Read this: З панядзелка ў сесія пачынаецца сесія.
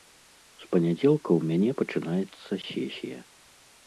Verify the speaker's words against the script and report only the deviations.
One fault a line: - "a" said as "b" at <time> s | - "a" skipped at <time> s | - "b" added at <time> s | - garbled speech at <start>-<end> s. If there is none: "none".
- "сесія" said as "мяне" at 1.5 s